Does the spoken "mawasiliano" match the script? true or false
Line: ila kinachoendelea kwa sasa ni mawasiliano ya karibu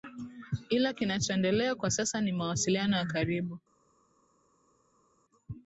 true